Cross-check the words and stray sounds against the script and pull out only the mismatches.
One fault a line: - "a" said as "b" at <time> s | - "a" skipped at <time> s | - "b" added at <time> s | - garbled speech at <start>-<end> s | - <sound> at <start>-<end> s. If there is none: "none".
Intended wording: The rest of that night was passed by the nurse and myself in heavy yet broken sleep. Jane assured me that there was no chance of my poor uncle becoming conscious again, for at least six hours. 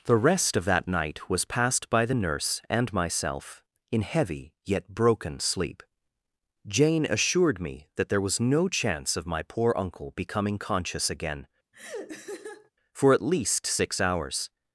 - laugh at 11.7-12.7 s